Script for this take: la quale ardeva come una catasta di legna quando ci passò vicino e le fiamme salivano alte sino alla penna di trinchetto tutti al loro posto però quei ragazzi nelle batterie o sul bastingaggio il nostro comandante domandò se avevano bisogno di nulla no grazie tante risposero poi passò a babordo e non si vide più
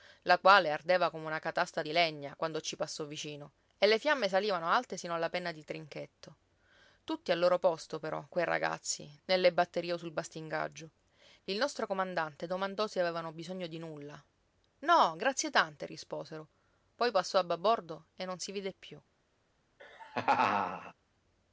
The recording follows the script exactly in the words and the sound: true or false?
false